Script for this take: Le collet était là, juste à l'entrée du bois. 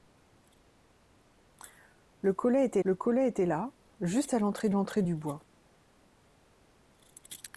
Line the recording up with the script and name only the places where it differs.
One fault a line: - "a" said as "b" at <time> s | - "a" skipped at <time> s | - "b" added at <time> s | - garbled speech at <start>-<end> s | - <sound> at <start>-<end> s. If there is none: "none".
- "le collet était" added at 2.8 s
- "l'entrée" added at 4.7 s